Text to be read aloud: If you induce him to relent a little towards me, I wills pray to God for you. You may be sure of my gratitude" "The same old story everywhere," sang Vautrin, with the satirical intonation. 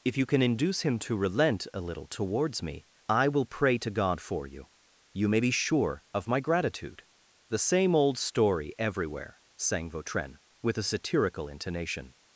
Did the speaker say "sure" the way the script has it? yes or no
yes